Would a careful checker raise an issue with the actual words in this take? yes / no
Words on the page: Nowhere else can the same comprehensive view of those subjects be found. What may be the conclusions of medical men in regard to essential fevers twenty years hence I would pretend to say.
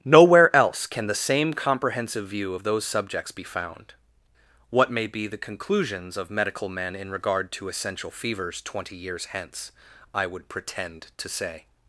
no